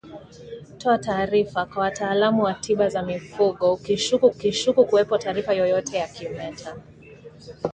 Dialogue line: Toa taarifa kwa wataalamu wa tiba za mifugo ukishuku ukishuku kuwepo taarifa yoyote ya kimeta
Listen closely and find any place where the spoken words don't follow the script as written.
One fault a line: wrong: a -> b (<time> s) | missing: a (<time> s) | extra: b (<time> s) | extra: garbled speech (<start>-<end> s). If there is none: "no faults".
no faults